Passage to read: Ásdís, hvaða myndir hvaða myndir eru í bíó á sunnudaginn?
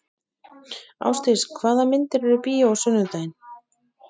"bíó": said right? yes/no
yes